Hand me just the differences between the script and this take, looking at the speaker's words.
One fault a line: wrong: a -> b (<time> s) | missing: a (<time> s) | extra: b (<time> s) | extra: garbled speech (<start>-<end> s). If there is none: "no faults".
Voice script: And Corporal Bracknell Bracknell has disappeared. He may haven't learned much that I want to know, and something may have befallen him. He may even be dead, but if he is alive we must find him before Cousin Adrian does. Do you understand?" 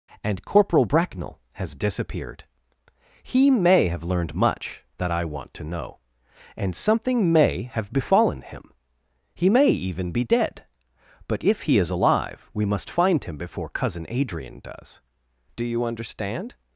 missing: Bracknell (1.4 s)
wrong: haven't -> have (3.9 s)